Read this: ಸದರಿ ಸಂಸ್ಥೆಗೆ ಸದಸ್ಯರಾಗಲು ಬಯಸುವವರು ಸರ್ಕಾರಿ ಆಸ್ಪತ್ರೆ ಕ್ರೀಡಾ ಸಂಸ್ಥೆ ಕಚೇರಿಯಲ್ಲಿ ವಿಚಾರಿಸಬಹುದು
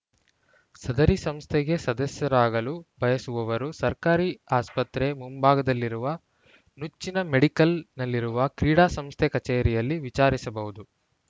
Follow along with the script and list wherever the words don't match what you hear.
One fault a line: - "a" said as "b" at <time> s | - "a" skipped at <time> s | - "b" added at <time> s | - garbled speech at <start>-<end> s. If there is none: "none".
- "ಮುಂಭಾಗದಲ್ಲಿರುವ ನುಚ್ಚಿನ ಮೆಡಿಕಲ್‌ನಲ್ಲಿರುವ" added at 5.1 s